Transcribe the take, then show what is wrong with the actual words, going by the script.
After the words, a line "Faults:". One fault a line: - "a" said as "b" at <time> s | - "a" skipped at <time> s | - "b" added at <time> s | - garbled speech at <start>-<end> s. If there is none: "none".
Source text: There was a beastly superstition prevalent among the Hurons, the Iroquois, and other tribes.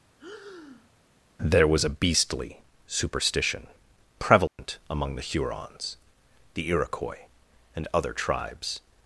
There was a beastly superstition prevalent among the Hurons, the Iroquois, and other tribes.
Faults:
none